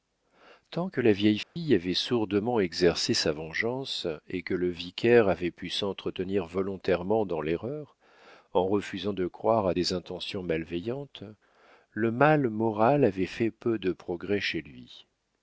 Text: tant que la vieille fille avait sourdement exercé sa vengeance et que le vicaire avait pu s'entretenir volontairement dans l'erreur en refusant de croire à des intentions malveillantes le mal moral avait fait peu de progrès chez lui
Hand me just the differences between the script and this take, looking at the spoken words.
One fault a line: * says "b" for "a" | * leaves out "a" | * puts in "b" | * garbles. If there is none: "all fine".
all fine